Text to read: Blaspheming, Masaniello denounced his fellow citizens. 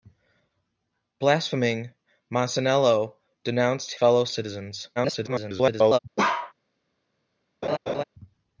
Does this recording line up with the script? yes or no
no